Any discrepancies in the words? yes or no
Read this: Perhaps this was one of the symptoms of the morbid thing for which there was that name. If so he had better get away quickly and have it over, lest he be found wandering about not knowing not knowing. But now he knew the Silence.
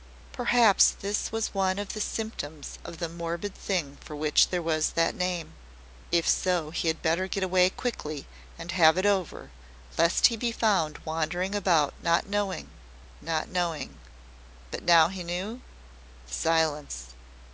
no